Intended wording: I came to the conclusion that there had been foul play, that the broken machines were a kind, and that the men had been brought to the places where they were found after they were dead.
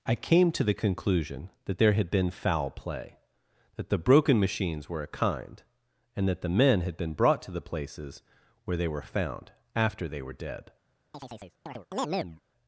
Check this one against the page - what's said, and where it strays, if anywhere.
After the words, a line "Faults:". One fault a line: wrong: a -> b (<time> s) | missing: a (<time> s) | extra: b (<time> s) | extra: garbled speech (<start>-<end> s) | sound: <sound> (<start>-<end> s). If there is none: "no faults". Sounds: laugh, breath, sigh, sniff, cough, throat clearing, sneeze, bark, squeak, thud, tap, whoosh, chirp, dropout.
I came to the conclusion that there had been foul play, that the broken machines were a kind, and that the men had been brought to the places where they were found after they were dead.
Faults:
sound: chirp (11.1-12.4 s)